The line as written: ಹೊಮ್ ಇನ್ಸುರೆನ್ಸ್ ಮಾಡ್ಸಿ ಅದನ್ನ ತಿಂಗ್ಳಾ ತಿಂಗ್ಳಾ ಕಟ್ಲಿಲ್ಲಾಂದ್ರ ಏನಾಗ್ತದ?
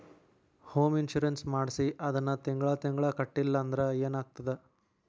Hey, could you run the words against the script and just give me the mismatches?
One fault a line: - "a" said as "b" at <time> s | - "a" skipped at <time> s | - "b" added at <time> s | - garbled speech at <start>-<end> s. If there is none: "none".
none